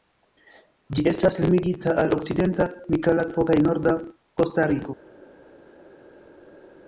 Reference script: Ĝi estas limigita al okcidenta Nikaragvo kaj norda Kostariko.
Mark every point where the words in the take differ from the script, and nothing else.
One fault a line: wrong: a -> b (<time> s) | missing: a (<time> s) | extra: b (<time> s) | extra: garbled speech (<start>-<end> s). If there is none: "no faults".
no faults